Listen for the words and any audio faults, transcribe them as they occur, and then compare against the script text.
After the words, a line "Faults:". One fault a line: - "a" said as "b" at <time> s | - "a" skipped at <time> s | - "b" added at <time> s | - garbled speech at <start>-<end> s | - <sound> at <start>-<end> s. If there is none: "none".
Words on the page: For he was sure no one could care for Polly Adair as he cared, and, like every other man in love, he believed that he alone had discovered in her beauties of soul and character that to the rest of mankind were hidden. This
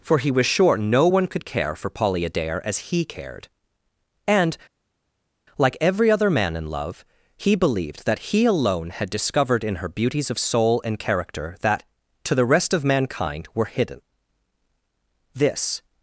For he was sure no one could care for Polly Adair as he cared, and, like every other man in love, he believed that he alone had discovered in her beauties of soul and character that to the rest of mankind were hidden. This
Faults:
none